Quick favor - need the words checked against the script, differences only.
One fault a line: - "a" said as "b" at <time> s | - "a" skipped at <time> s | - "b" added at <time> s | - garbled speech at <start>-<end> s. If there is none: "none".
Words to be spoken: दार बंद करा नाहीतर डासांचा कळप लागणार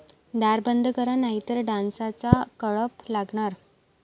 none